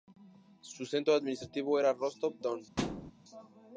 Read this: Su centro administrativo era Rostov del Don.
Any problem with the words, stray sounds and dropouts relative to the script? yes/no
yes